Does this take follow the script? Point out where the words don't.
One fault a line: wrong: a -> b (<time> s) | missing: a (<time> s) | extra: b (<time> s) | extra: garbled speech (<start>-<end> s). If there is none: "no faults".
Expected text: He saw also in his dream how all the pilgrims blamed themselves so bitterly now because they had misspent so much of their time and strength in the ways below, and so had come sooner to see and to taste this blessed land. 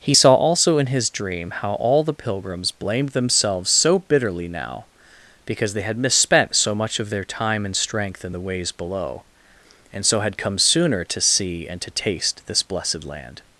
no faults